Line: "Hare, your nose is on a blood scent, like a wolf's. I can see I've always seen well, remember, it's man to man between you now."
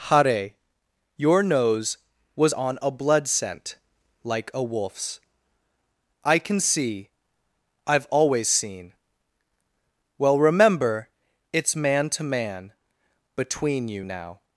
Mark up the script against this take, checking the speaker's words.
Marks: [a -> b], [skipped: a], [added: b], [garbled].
"Hare, your nose [is -> was] on a blood scent, like a wolf's. I can see I've always seen well, remember, it's man to man between you now."